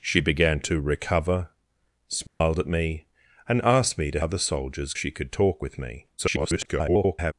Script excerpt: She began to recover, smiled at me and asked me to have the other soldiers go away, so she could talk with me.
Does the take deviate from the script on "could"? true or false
false